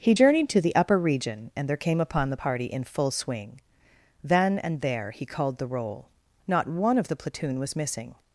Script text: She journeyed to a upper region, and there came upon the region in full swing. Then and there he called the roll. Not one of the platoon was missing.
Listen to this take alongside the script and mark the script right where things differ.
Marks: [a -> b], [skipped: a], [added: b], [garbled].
[She -> He] journeyed to [a -> the] upper region, and there came upon the [region -> party] in full swing. Then and there he called the roll. Not one of the platoon was missing.